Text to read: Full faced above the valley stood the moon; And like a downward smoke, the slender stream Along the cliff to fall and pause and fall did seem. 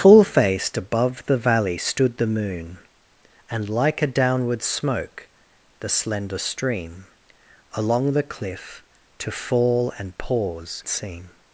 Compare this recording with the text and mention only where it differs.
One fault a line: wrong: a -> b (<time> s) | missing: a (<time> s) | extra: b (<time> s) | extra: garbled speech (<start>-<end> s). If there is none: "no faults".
missing: and fall did (10.8 s)